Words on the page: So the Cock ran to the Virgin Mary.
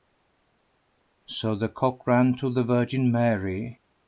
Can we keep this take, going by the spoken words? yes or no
yes